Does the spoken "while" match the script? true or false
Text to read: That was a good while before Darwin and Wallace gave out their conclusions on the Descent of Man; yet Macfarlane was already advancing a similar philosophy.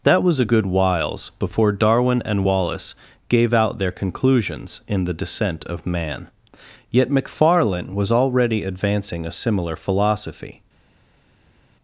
false